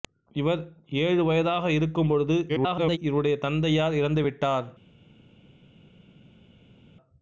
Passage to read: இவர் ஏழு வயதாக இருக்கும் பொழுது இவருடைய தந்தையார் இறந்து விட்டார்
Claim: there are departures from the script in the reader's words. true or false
true